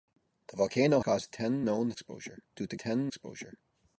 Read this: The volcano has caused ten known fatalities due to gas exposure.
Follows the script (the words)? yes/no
no